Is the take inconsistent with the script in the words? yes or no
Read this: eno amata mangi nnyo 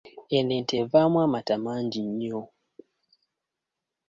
yes